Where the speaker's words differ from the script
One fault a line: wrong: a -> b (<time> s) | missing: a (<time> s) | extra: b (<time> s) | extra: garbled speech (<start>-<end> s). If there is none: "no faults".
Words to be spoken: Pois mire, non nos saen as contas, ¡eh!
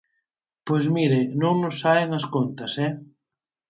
no faults